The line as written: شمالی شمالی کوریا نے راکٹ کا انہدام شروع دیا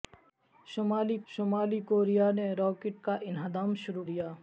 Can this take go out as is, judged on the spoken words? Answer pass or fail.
pass